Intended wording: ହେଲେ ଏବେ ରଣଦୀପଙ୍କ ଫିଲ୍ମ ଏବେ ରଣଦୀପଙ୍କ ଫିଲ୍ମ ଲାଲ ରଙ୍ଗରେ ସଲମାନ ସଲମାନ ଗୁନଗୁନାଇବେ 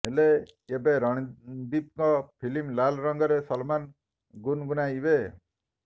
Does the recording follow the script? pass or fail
fail